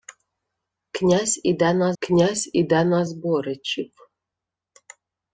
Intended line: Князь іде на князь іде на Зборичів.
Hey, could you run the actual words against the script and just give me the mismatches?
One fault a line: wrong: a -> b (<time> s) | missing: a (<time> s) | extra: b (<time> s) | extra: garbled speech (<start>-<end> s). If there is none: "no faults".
no faults